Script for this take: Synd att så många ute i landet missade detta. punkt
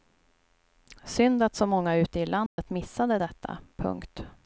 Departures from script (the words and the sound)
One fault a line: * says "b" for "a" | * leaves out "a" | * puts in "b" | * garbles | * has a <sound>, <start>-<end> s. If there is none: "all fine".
* has a dropout, 2.5-2.6 s